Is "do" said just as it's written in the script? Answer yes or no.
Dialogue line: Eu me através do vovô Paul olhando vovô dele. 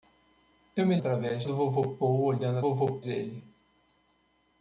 yes